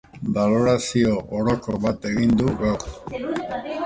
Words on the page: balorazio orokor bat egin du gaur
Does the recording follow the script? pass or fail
pass